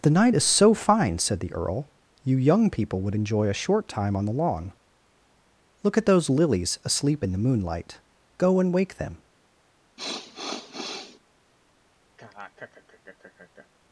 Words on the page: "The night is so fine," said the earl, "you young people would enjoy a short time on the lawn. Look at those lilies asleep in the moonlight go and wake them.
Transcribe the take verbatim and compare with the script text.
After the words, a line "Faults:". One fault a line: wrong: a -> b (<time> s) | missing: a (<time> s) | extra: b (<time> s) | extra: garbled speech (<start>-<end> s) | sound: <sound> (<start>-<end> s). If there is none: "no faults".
"The night is so fine," said the earl, "you young people would enjoy a short time on the lawn. Look at those lilies asleep in the moonlight go and wake them.
Faults:
sound: sniff (10.0-11.2 s)
sound: laugh (12.2-13.7 s)